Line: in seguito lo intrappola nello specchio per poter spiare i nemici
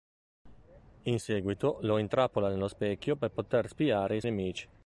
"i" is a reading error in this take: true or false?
false